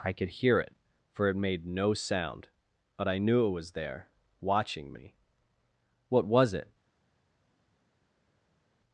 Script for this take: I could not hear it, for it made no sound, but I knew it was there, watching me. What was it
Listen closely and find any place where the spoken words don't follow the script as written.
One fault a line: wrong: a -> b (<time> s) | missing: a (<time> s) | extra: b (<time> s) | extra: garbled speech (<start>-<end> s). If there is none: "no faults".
missing: not (0.3 s)